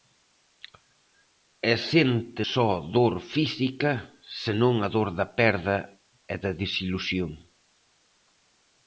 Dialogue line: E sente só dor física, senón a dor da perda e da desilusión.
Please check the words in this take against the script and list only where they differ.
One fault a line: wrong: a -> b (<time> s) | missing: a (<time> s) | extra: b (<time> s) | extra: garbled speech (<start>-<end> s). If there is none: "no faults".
no faults